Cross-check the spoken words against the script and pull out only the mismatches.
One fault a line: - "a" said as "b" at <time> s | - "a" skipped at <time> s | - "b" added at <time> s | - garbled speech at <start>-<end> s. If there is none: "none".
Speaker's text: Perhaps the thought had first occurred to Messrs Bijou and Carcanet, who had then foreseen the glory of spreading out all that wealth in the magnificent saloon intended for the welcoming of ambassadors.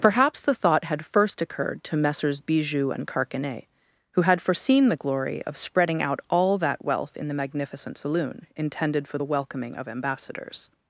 - "then" skipped at 4.4 s